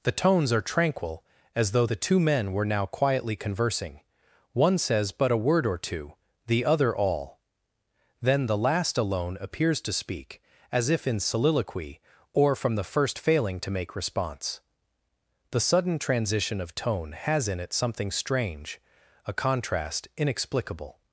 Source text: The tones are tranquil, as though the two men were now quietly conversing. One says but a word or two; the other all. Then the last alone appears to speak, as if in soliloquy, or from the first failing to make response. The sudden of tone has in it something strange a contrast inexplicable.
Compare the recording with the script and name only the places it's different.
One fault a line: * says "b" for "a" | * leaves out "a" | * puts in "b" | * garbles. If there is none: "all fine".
* puts in "transition"